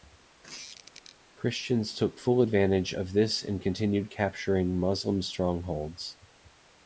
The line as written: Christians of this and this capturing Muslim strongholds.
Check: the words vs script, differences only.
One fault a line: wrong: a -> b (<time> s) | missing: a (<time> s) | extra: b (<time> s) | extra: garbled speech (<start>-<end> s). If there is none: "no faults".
extra: took full advantage (2.0 s)
wrong: this -> continued (3.6 s)